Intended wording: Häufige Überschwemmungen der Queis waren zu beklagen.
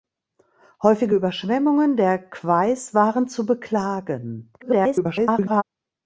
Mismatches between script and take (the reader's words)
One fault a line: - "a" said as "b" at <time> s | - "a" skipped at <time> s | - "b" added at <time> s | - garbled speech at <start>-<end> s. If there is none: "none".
- garbled speech at 4.6-5.6 s